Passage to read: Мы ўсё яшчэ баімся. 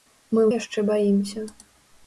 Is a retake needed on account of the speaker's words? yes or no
yes